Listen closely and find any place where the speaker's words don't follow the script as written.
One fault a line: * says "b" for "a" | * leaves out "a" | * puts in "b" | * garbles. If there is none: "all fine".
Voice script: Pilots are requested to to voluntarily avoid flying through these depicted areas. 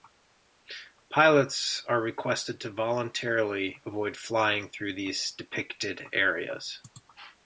* leaves out "to"